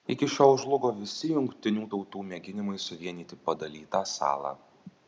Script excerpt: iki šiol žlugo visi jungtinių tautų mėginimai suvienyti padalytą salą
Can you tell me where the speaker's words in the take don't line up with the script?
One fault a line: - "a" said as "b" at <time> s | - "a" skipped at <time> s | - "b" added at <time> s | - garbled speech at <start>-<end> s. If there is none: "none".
none